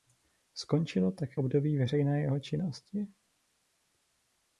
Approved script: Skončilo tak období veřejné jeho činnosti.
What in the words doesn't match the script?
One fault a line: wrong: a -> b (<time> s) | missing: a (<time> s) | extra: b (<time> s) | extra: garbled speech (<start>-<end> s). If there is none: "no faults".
no faults